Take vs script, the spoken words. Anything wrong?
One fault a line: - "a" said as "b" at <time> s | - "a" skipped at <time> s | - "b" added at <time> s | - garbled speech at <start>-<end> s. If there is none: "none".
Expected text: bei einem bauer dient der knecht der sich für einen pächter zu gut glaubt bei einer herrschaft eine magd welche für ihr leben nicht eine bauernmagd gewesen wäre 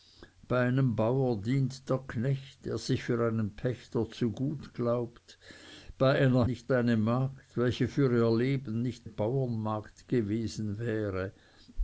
- "herrschaft" said as "nicht" at 6.4 s
- "eine" skipped at 9.1 s